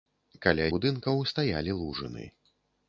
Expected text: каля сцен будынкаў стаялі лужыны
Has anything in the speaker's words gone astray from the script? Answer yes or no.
yes